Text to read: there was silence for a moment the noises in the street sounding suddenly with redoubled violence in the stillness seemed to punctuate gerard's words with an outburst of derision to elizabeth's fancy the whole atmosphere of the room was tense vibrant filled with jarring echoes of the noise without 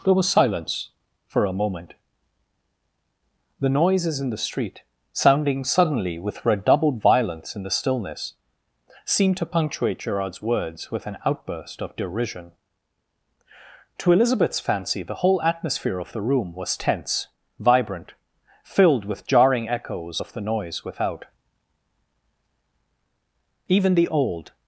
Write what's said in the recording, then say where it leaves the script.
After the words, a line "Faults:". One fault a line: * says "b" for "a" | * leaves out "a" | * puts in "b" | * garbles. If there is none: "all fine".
there was silence for a moment the noises in the street sounding suddenly with redoubled violence in the stillness seemed to punctuate gerard's words with an outburst of derision to elizabeth's fancy the whole atmosphere of the room was tense vibrant filled with jarring echoes of the noise without even the old
Faults:
* puts in "even the old"